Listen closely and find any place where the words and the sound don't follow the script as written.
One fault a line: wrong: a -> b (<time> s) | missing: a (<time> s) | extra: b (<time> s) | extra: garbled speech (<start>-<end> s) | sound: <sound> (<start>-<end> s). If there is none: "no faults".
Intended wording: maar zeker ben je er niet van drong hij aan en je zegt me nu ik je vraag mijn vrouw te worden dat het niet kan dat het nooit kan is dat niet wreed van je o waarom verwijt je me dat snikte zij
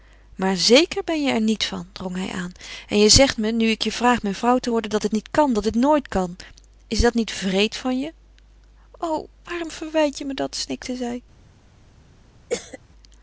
sound: cough (12.5-12.8 s)